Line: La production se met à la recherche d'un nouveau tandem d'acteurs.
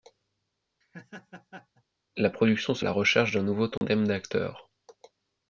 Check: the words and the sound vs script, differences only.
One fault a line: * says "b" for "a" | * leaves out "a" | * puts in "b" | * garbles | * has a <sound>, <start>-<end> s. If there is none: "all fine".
* has a laugh, 0.8-1.8 s
* leaves out "met"
* has a dropout, 3.8-3.8 s